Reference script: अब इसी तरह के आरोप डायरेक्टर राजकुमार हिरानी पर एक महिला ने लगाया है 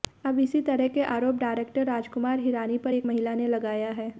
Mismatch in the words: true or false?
false